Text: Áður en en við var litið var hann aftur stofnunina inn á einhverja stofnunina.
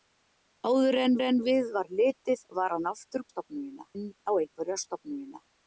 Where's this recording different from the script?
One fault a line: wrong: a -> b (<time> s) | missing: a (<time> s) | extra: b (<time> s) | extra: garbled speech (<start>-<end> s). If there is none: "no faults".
no faults